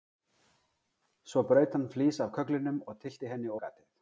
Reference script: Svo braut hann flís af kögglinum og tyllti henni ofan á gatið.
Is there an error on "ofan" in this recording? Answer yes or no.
yes